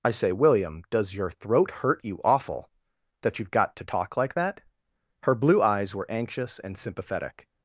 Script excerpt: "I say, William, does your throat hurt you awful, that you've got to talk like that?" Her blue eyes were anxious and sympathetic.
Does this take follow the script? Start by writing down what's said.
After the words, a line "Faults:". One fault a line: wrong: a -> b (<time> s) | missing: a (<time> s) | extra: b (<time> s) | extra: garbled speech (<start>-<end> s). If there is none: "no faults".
"I say, William, does your throat hurt you awful, that you've got to talk like that?" Her blue eyes were anxious and sympathetic.
Faults:
no faults